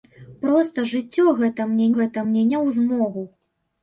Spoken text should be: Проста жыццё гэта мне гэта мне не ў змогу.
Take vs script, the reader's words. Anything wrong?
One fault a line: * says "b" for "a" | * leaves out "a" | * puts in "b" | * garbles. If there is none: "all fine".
all fine